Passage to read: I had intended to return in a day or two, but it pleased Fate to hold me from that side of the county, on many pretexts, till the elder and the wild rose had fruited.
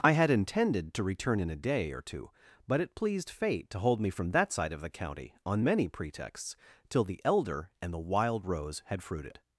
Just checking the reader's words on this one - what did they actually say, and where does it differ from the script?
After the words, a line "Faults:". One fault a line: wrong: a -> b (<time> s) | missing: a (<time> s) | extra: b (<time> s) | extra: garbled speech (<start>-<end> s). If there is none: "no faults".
I had intended to return in a day or two, but it pleased Fate to hold me from that side of the county, on many pretexts, till the elder and the wild rose had fruited.
Faults:
no faults